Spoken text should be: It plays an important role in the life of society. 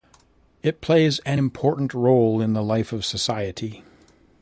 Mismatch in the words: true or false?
false